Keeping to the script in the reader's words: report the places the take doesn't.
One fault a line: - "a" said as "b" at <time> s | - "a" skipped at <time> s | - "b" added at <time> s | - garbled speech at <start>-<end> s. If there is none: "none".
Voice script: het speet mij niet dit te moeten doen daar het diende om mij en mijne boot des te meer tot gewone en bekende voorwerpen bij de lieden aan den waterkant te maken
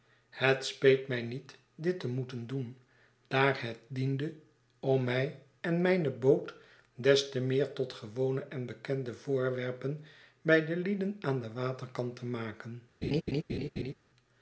none